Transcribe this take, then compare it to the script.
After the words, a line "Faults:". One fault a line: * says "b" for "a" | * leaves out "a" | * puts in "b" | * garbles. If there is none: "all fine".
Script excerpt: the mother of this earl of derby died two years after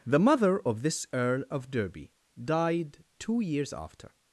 the mother of this earl of derby died two years after
Faults:
all fine